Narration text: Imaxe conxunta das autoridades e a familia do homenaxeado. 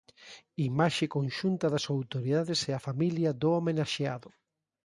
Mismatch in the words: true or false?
false